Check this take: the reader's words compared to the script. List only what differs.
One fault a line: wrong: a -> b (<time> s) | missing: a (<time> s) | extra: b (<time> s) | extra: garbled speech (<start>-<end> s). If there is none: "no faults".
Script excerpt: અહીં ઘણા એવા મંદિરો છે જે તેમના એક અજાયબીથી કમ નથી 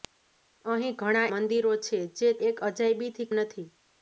missing: એવા (1.3 s)
missing: તેમના (2.3 s)
missing: કમ (3.3 s)